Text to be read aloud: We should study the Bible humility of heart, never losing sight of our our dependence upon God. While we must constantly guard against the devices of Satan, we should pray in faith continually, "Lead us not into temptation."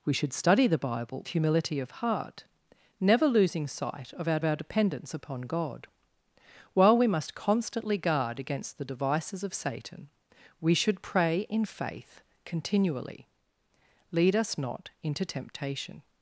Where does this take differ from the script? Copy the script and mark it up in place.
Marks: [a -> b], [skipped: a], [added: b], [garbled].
We should study the Bible humility of heart, never losing sight of our our dependence upon God. While we must constantly guard against the devices of Satan, we should pray in faith continually, "Lead us not into temptation."